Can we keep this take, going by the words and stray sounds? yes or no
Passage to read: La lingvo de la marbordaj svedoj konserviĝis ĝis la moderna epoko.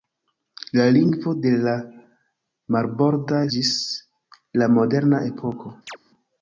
no